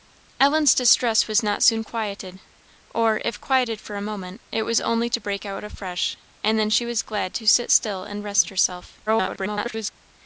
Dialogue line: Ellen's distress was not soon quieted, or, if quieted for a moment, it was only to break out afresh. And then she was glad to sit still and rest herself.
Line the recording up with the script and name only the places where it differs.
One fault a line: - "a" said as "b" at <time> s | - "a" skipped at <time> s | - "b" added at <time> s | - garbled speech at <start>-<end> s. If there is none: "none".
- garbled speech at 9.1-9.9 s